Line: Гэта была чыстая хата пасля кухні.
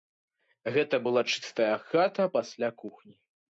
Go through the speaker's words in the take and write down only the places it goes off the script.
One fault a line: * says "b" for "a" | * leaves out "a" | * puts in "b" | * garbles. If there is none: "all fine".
all fine